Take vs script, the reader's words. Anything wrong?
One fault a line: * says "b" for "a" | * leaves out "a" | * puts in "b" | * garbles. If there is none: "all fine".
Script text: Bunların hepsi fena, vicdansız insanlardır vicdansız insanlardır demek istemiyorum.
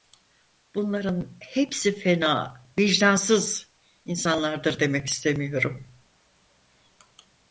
* leaves out "vicdansız insanlardır"